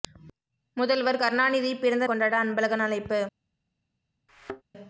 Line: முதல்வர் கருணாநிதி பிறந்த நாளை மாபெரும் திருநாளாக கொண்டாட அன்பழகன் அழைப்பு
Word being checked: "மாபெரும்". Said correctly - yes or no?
no